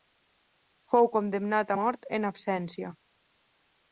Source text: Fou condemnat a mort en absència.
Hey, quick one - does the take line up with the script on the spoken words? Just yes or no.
yes